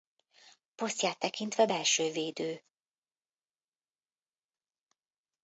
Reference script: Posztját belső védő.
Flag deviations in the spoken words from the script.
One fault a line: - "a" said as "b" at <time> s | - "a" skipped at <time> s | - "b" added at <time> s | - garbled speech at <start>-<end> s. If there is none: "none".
- "tekintve" added at 1.2 s